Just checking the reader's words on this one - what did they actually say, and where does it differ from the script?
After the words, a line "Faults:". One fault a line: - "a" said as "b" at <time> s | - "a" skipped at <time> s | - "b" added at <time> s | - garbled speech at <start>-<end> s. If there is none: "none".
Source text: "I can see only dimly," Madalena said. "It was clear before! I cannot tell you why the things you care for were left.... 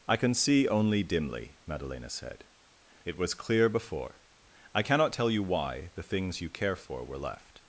"I can see only dimly," Madalena said. "It was clear before! I cannot tell you why the things you care for were left....
Faults:
none